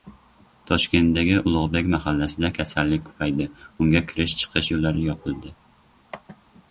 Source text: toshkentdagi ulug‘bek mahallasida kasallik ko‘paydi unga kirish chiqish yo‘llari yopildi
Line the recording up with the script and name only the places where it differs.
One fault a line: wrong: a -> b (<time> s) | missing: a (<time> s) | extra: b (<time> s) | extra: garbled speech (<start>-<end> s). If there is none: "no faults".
no faults